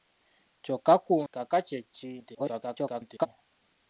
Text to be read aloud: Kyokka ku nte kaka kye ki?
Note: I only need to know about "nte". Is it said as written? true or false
false